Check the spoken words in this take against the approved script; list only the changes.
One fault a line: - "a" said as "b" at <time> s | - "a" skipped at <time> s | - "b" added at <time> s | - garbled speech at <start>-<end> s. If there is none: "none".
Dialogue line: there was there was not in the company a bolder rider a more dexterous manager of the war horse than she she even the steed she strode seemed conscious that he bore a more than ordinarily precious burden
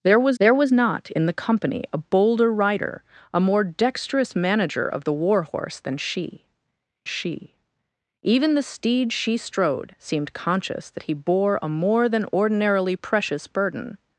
none